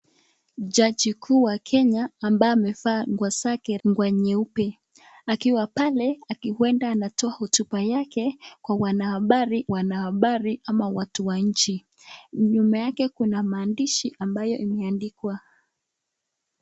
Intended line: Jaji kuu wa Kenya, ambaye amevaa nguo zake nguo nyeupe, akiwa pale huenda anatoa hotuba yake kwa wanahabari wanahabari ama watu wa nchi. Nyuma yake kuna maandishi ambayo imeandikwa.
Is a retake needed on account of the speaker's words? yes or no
no